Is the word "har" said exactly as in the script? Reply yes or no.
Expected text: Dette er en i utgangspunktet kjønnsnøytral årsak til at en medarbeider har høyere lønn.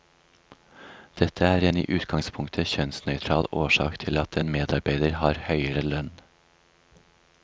yes